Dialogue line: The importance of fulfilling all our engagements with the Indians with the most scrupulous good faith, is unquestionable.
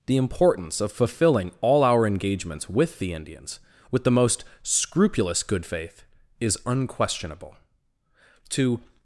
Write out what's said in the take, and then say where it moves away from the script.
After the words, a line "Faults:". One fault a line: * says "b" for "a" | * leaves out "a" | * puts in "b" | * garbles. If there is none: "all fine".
The importance of fulfilling all our engagements with the Indians with the most scrupulous good faith, is unquestionable. To
Faults:
* puts in "To"